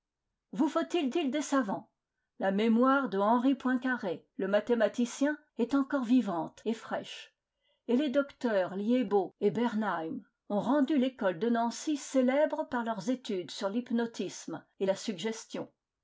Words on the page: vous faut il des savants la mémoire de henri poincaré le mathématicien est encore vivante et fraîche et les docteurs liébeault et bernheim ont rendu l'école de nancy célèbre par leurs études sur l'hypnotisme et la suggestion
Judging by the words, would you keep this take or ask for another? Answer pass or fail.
fail